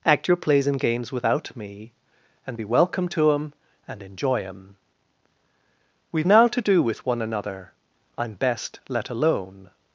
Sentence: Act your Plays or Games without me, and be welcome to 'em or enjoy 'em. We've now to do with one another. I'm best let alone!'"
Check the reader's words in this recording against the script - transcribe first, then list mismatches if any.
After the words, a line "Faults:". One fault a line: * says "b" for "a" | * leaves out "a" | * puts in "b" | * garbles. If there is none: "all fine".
Act your Plays and Games without me, and be welcome to 'em and enjoy 'em. We've now to do with one another. I'm best let alone!'"
Faults:
* says "and" for "or"
* says "and" for "or"